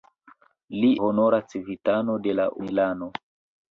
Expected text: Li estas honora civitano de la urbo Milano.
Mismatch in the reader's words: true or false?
true